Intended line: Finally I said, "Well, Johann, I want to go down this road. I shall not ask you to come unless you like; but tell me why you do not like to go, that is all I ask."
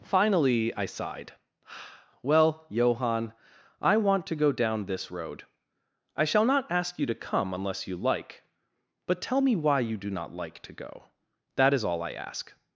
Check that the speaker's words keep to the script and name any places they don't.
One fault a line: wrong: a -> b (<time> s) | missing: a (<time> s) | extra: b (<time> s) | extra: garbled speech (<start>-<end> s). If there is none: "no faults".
wrong: said -> sighed (0.8 s)